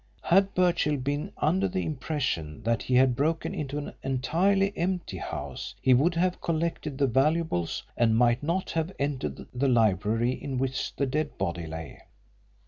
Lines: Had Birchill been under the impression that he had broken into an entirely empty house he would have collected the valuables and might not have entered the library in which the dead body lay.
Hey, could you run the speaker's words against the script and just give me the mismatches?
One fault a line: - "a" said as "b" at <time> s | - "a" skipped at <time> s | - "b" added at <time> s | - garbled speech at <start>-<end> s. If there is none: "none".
none